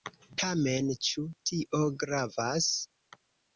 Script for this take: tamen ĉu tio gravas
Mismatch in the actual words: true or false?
false